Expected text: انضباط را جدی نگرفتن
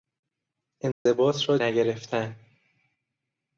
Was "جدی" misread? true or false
true